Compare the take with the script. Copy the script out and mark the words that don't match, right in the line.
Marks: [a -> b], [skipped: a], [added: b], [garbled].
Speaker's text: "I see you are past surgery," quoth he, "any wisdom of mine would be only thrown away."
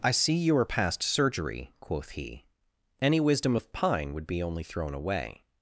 "I see you are past surgery," quoth he, "any wisdom of [mine -> pine] would be only thrown away."